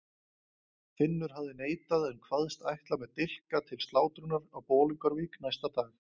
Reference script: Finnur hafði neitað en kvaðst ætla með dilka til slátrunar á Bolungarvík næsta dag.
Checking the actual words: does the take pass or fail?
pass